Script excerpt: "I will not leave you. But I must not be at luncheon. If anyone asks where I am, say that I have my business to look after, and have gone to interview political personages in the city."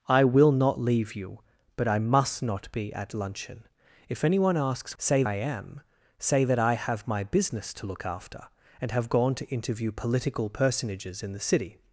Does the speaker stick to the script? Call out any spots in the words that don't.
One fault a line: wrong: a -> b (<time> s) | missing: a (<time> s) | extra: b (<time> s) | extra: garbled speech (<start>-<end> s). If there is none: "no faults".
wrong: where -> say (5.0 s)